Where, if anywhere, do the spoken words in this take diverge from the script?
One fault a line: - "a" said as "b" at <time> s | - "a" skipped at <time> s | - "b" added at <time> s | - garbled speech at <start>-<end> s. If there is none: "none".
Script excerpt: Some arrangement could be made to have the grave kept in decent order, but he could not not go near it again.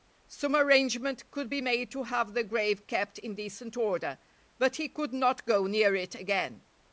- "not" skipped at 5.5 s